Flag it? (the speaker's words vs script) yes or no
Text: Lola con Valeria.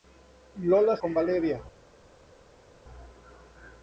no